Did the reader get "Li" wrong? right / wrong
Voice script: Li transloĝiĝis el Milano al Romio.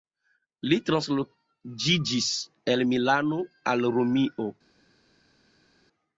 right